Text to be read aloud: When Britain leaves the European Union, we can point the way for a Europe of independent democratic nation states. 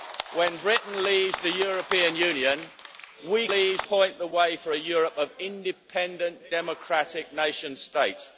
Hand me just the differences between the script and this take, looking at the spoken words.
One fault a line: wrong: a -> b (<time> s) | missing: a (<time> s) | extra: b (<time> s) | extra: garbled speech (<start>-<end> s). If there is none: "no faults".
wrong: can -> leaves (3.5 s)